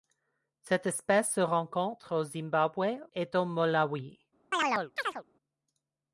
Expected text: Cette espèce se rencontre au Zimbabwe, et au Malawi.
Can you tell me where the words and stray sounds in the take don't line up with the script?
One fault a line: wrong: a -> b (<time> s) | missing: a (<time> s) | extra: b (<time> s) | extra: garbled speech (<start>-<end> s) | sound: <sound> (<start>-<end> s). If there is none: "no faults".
sound: chirp (4.5-5.2 s)